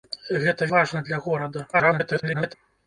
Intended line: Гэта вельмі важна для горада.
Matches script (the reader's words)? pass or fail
fail